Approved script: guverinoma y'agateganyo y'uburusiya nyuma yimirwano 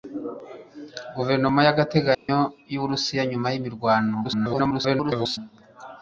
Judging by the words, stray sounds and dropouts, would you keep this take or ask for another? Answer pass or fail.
fail